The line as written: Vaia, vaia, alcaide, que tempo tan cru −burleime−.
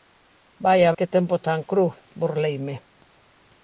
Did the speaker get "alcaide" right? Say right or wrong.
wrong